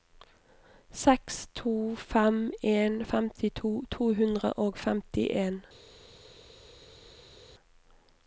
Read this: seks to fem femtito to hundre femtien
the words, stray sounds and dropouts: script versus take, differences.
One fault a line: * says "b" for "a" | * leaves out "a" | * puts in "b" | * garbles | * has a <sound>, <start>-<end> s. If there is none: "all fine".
* puts in "en"
* puts in "og"